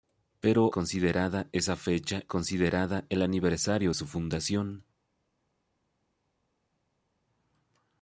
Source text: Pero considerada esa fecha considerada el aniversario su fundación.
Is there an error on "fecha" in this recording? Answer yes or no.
no